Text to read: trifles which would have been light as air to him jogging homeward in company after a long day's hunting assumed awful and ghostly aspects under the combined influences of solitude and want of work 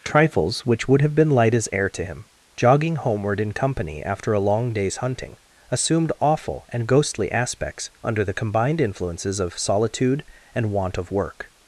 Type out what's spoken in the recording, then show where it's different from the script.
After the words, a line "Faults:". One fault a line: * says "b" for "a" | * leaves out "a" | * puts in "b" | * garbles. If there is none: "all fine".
trifles which would have been light as air to him jogging homeward in company after a long day's hunting assumed awful and ghostly aspects under the combined influences of solitude and want of work
Faults:
all fine